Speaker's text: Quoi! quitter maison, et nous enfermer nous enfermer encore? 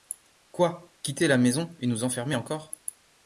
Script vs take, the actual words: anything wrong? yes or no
yes